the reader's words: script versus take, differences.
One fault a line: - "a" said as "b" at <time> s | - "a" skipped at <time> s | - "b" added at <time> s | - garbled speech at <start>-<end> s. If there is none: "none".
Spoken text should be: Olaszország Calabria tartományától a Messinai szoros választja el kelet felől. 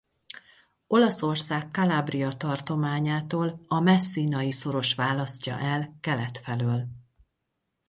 none